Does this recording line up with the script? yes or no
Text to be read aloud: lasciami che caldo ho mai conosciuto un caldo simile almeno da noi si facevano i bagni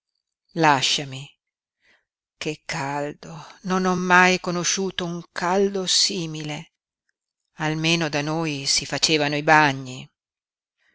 no